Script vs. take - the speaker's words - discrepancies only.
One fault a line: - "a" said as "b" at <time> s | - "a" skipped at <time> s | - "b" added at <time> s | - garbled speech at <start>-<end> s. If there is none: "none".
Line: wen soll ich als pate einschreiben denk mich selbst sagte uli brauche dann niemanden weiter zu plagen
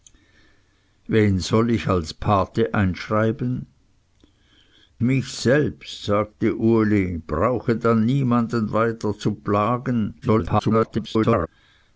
- "denk" skipped at 3.7 s
- garbled speech at 10.2-11.5 s